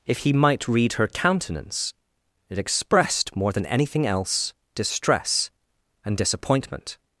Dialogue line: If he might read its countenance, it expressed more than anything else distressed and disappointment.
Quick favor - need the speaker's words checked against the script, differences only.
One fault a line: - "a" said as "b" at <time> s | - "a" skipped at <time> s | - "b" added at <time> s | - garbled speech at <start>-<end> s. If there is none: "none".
- "its" said as "her" at 0.9 s
- "distressed" said as "distress" at 4.8 s